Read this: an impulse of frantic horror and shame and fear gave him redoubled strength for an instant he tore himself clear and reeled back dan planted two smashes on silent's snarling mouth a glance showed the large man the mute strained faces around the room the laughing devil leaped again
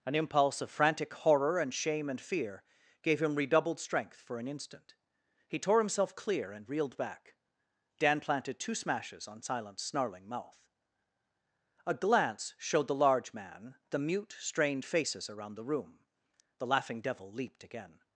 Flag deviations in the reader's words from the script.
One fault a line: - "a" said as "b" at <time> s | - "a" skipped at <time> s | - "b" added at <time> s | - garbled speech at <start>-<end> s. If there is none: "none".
none